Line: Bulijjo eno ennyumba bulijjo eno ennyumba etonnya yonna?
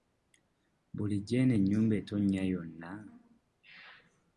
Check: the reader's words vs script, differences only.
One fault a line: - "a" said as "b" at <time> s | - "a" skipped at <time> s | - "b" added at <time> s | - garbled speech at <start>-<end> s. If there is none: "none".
- "bulijjo eno ennyumba" skipped at 1.9 s